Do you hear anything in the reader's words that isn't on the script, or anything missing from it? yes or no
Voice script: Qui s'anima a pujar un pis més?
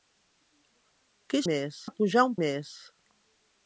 yes